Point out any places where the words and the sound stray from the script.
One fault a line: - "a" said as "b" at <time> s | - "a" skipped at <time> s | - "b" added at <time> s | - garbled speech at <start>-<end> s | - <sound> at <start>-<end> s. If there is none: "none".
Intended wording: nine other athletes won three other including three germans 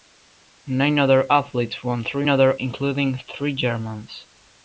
none